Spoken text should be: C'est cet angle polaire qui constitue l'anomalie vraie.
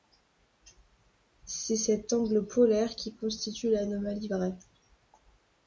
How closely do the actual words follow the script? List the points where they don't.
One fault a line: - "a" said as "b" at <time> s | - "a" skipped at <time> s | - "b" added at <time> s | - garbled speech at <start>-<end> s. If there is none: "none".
none